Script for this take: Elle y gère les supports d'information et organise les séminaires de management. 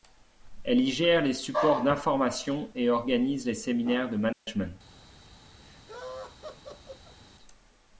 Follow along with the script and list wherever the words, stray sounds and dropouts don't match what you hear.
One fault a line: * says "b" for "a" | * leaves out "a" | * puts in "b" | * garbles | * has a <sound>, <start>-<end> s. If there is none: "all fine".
* has a dropout, 4.3-4.5 s
* has a laugh, 5.6-7.2 s